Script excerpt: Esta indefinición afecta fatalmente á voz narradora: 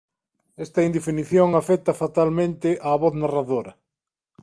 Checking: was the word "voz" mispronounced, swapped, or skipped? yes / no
no